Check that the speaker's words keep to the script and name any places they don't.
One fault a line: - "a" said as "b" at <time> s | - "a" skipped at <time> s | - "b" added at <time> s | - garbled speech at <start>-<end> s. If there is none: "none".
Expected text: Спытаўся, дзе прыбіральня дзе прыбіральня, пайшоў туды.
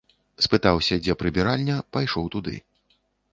- "дзе прыбіральня" skipped at 1.8 s